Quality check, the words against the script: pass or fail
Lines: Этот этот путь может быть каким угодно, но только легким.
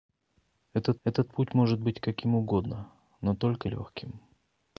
pass